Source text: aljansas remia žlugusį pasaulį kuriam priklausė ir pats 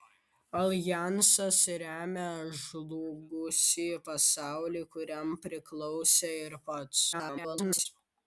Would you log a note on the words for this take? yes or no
yes